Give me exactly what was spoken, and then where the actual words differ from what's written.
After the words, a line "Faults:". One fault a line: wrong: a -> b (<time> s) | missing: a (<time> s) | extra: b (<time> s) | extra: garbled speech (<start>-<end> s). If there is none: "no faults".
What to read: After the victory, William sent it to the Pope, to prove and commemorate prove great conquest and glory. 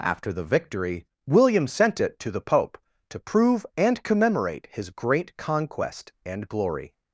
After the victory, William sent it to the Pope, to prove and commemorate his great conquest and glory.
Faults:
wrong: prove -> his (4.7 s)